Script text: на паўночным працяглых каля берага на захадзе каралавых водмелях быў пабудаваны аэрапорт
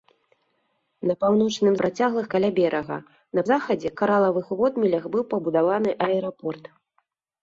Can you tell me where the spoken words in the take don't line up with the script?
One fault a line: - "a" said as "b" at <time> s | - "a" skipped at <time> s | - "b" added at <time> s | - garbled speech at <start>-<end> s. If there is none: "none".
none